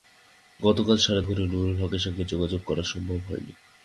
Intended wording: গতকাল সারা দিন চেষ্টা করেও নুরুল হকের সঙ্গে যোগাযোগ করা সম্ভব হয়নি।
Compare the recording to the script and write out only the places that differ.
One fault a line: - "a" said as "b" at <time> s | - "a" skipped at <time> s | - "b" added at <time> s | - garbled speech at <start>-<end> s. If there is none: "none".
- "দিন চেষ্টা" skipped at 1.2 s